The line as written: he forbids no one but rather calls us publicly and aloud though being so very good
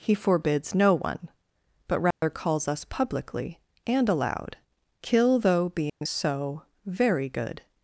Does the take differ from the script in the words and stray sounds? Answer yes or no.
yes